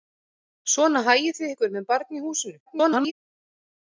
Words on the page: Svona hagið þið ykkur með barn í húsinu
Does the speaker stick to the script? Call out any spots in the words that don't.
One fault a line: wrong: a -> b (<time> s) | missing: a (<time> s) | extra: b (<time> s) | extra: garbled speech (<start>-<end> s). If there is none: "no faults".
extra: garbled speech (2.7-3.1 s)